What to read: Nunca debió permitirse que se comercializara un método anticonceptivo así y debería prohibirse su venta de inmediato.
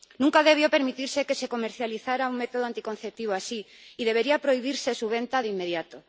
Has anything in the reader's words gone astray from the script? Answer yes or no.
no